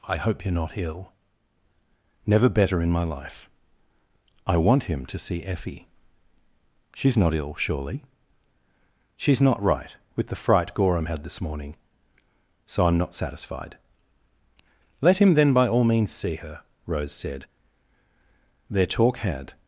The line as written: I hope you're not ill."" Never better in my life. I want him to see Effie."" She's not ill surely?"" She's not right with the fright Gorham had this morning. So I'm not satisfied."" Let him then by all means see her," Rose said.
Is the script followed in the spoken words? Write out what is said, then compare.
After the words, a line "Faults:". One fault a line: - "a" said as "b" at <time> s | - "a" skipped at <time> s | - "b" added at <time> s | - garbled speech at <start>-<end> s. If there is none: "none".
I hope you're not ill."" Never better in my life. I want him to see Effie."" She's not ill surely?"" She's not right with the fright Gorham had this morning. So I'm not satisfied."" Let him then by all means see her," Rose said. Their talk had
Faults:
- "Their talk had" added at 18.7 s